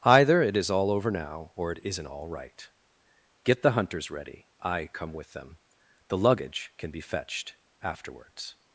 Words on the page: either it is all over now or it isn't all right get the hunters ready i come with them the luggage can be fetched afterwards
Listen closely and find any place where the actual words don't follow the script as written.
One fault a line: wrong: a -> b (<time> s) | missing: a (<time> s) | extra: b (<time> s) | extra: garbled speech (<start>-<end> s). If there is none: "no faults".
no faults